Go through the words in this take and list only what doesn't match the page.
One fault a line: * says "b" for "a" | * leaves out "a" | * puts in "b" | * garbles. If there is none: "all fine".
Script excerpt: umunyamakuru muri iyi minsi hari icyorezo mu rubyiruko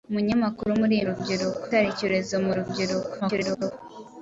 * says "rubyiruko" for "minsi"
* garbles